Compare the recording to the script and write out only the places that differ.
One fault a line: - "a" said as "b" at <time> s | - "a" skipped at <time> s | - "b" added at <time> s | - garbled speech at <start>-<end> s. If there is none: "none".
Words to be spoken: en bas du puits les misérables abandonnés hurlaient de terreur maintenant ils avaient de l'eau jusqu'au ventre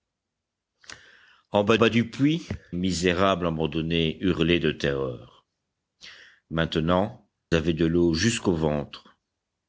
- "bas" added at 1.8 s
- "les" skipped at 2.5 s
- "ils" skipped at 7.2 s